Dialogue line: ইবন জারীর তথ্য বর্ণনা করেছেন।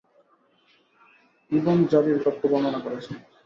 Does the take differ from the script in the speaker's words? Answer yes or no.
no